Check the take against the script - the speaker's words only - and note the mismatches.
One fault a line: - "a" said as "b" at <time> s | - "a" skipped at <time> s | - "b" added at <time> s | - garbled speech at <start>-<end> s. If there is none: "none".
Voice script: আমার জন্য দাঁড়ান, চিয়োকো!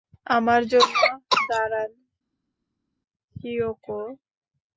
none